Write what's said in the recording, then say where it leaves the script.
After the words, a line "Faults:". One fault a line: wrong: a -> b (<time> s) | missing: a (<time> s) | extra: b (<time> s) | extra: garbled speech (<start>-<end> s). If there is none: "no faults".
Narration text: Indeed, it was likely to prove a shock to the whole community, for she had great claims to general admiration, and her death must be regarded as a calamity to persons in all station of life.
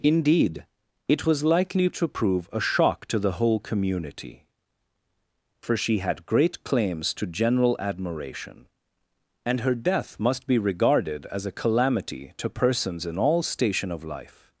Indeed, it was likely to prove a shock to the whole community, for she had great claims to general admiration, and her death must be regarded as a calamity to persons in all station of life.
Faults:
no faults